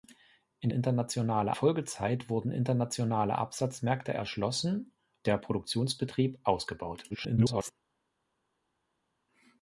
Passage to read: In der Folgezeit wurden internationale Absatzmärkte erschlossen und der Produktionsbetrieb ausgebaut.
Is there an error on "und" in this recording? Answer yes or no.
yes